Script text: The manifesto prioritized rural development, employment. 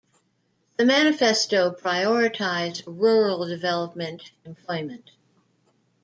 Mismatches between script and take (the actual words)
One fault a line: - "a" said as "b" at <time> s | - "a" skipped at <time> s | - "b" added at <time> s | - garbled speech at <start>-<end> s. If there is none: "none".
none